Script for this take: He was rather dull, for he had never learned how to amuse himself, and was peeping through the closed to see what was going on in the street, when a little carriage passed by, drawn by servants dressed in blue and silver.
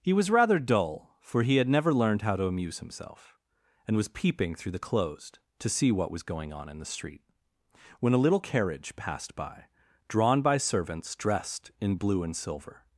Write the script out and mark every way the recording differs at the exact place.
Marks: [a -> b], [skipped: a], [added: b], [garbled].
He was rather dull, for he had never learned how to amuse himself, and was peeping through the closed to see what was going on in the street, when a little carriage passed by, drawn by servants dressed in blue and silver.